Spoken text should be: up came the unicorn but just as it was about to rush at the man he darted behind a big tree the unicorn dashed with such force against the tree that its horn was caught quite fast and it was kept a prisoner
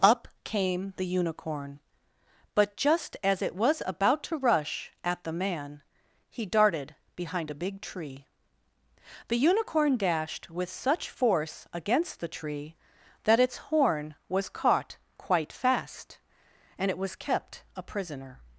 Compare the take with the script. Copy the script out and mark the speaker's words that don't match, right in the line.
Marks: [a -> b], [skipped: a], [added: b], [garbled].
up came the unicorn but just as it was about to rush at the man he darted behind a big tree the unicorn dashed with such force against the tree that its horn was caught quite fast and it was kept a prisoner